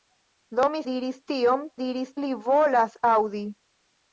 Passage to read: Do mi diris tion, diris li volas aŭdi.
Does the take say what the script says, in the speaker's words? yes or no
yes